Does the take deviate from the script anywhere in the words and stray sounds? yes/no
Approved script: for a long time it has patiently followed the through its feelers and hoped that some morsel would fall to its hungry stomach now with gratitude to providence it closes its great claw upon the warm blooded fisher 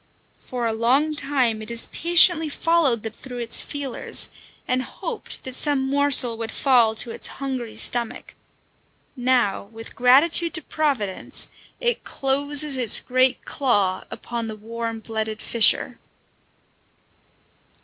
no